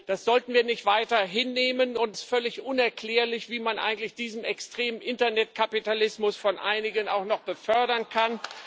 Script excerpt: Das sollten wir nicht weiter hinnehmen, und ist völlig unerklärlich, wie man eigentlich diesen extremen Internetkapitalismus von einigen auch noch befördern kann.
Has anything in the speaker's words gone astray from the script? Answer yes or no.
no